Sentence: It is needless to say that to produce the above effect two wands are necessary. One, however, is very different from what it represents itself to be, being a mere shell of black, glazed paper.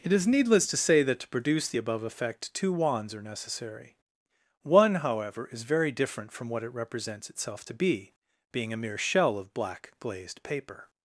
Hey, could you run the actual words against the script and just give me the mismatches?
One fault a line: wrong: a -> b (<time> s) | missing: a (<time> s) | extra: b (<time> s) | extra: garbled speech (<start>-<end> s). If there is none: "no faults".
no faults